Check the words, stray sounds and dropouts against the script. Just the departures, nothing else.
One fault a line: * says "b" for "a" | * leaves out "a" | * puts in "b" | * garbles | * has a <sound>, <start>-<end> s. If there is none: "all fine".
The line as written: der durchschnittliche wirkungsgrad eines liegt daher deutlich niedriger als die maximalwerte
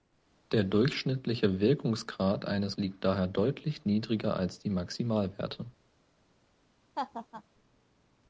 * has a laugh, 7.0-7.4 s